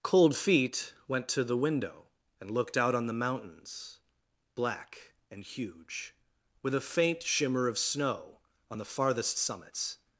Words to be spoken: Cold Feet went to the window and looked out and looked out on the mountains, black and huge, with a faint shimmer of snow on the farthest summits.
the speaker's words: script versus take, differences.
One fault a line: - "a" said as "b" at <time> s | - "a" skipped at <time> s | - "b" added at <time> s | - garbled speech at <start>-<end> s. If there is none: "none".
- "and looked out" skipped at 3.0 s